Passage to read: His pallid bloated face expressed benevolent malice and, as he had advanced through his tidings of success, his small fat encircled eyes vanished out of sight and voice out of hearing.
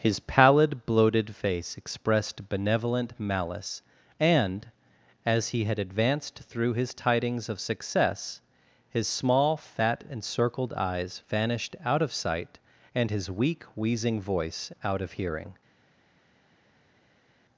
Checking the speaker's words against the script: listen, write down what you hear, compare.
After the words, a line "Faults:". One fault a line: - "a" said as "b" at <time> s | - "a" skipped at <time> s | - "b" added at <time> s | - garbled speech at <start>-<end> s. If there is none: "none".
His pallid bloated face expressed benevolent malice and, as he had advanced through his tidings of success, his small fat encircled eyes vanished out of sight and his weak wheezing voice out of hearing.
Faults:
- "his weak wheezing" added at 13.1 s